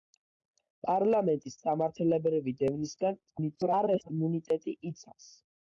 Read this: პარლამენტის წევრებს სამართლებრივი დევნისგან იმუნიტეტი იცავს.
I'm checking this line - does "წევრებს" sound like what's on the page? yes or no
no